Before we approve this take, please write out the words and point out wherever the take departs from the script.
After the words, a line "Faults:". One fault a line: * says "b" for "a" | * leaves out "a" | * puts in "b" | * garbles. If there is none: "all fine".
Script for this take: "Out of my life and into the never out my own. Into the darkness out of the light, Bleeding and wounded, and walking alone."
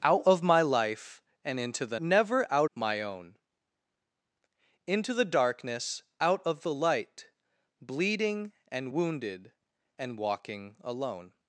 "Out of my life and into the never out my own. Into the darkness out of the light, Bleeding and wounded, and walking alone."
Faults:
all fine